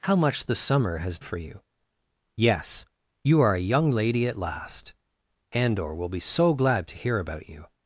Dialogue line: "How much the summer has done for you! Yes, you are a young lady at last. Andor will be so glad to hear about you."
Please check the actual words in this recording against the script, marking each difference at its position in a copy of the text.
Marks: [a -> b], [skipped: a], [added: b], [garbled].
"How much the summer has [skipped: done] for you! Yes, you are a young lady at last. Andor will be so glad to hear about you."